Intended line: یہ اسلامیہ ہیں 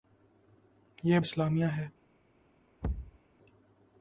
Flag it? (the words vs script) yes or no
no